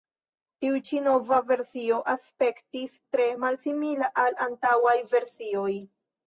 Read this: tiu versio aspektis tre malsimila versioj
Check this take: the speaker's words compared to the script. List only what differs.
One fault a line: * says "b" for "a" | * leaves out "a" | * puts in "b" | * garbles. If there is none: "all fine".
* puts in "ĉi nova"
* puts in "al antaŭaj"